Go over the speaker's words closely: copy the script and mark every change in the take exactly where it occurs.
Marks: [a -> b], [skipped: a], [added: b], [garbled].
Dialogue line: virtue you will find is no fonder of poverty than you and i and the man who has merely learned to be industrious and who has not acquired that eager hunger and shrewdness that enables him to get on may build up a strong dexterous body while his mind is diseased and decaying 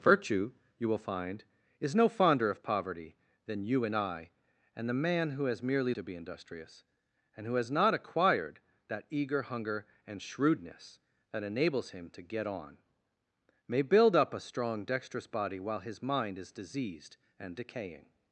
virtue you will find is no fonder of poverty than you and i and the man who has merely [skipped: learned] to be industrious and who has not acquired that eager hunger and shrewdness that enables him to get on may build up a strong dexterous body while his mind is diseased and decaying